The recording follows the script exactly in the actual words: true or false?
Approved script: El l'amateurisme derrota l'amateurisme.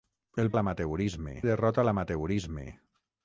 true